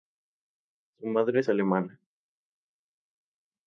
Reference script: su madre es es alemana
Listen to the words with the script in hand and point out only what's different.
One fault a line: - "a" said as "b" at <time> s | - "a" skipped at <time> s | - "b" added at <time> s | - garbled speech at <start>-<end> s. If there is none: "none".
- "es" skipped at 1.5 s